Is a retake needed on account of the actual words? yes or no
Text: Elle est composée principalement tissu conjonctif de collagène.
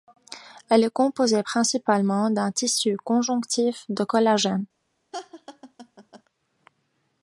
yes